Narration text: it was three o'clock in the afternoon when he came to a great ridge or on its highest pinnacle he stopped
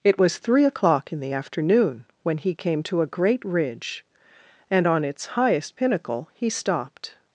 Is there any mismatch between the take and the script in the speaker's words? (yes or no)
yes